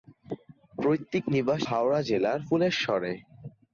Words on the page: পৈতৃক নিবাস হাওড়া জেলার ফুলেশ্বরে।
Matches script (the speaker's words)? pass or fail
pass